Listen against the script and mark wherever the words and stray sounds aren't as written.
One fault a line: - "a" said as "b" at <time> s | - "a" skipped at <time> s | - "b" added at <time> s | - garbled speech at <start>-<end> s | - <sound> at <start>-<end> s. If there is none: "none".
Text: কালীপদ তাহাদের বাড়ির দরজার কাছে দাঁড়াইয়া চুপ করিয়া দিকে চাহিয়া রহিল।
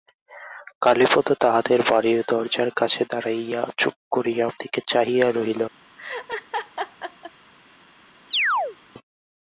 - laugh at 6.0-7.3 s
- chirp at 8.3-8.8 s